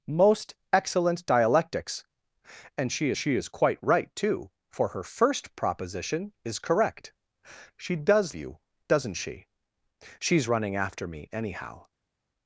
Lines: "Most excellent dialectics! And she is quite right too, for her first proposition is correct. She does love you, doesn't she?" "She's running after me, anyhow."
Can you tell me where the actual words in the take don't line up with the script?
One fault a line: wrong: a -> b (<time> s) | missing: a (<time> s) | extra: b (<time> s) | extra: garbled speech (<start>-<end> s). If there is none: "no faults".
extra: she (3.2 s)
missing: love (8.3 s)